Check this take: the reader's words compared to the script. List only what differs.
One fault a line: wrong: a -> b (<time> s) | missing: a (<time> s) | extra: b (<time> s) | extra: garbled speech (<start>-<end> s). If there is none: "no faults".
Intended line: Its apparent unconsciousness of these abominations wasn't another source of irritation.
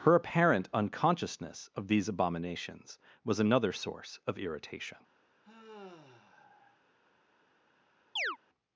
wrong: Its -> Her (0.0 s)
wrong: wasn't -> was (3.2 s)